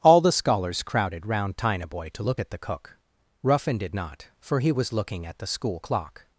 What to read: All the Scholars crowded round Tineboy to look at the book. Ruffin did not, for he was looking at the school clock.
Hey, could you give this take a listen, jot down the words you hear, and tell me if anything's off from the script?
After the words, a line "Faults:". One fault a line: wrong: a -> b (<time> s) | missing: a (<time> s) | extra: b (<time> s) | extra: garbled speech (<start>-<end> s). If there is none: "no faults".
All the Scholars crowded round Tineboy to look at the cook. Ruffin did not, for he was looking at the school clock.
Faults:
wrong: book -> cook (2.6 s)